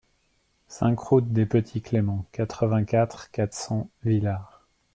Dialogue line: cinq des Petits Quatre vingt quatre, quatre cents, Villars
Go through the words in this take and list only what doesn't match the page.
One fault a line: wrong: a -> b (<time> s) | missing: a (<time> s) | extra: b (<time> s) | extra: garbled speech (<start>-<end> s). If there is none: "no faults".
extra: route (1.0 s)
extra: Cléments (1.8 s)